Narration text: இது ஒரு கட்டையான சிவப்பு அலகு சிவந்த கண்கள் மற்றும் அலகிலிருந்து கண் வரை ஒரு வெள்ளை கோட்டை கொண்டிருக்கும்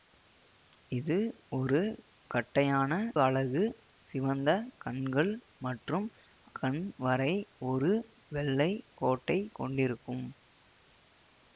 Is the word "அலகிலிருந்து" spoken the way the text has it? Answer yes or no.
no